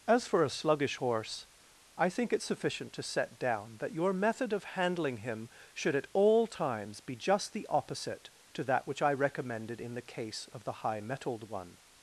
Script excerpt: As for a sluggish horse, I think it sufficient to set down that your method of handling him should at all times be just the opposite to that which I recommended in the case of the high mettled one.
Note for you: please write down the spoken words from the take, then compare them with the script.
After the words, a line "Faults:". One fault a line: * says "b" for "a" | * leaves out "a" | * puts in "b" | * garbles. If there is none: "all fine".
As for a sluggish horse, I think it sufficient to set down that your method of handling him should at all times be just the opposite to that which I recommended in the case of the high mettled one.
Faults:
all fine